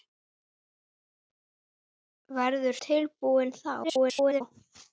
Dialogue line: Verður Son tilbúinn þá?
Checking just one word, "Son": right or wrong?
wrong